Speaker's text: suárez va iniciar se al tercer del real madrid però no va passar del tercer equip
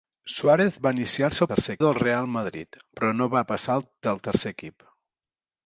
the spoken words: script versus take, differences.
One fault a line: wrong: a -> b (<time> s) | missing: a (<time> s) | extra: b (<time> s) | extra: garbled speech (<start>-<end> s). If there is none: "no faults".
no faults